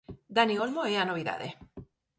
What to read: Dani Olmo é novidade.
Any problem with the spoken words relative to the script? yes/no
yes